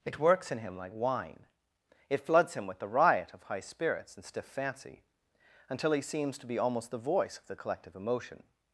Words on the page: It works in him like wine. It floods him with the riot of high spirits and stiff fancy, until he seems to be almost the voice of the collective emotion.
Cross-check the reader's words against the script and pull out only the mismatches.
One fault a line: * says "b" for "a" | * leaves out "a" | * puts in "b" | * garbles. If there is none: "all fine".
all fine